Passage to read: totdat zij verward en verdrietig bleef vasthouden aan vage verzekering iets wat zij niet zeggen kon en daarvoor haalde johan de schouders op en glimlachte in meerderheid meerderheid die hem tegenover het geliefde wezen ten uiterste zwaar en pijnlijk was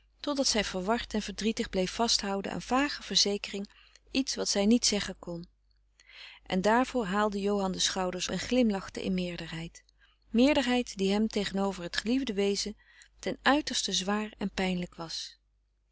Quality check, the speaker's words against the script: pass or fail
fail